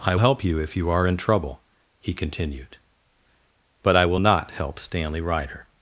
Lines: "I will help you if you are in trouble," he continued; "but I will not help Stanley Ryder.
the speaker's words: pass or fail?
fail